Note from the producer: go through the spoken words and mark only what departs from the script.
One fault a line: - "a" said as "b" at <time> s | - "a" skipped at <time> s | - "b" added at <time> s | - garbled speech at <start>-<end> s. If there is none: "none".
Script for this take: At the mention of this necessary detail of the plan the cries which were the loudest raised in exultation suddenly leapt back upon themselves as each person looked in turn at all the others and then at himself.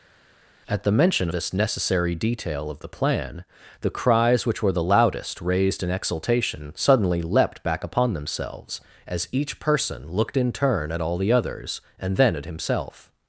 - "of" skipped at 1.3 s